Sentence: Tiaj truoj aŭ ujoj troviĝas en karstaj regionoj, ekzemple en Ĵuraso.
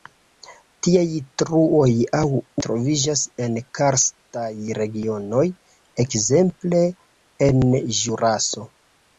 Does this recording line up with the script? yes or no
no